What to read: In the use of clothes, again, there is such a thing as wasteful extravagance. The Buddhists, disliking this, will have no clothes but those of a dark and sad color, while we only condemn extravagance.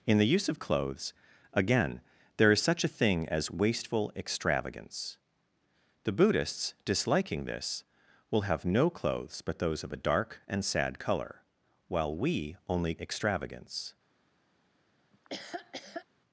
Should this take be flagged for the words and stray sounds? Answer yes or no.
yes